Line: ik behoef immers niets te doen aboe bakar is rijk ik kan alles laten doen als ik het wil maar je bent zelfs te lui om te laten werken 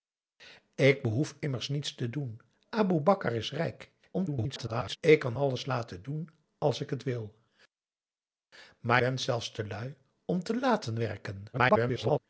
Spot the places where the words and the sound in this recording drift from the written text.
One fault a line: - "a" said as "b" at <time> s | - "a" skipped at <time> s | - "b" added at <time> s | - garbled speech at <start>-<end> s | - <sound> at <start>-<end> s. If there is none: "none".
- garbled speech at 4.1-5.0 s
- "je" skipped at 9.0 s
- garbled speech at 11.5-12.2 s